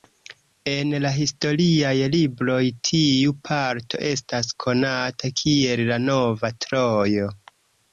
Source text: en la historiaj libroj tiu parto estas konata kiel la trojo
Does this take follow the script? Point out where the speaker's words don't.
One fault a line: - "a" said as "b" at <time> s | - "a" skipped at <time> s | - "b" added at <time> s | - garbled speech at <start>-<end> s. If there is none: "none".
- "nova" added at 6.1 s